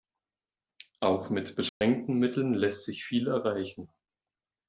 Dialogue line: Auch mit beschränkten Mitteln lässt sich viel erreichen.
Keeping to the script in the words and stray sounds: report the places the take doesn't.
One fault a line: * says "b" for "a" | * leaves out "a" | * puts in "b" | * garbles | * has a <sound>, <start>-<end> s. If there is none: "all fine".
* has a dropout, 1.7-1.8 s